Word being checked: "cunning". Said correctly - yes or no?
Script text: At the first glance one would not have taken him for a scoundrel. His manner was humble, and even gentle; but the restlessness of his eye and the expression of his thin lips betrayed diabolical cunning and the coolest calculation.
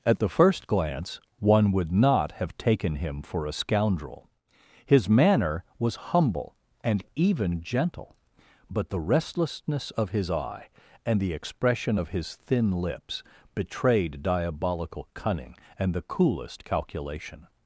yes